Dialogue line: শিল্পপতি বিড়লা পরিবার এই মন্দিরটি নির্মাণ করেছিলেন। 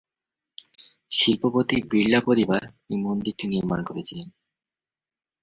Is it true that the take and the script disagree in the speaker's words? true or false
false